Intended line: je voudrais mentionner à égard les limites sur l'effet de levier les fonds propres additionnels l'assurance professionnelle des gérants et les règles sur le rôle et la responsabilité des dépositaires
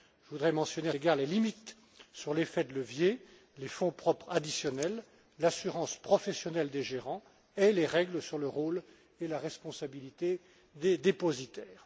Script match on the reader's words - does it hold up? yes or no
yes